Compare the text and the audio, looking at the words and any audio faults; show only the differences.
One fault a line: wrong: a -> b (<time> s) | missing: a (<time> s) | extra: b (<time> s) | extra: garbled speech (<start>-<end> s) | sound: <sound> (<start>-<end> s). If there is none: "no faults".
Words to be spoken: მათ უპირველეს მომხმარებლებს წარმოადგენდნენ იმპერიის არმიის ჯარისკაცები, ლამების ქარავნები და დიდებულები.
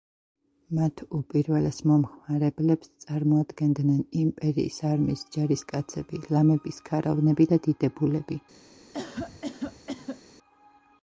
sound: cough (8.9-10.2 s)